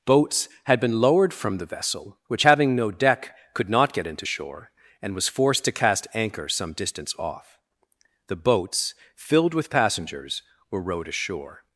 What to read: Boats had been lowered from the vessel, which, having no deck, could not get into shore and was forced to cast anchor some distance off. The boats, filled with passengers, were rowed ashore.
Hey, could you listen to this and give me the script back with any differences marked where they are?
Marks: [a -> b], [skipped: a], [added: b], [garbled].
Boats had been lowered from the vessel, which, having no deck, could not get into shore and was forced to cast anchor some distance off. The boats, filled with passengers, were rowed ashore.